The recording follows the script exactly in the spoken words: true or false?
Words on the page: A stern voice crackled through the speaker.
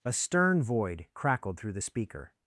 false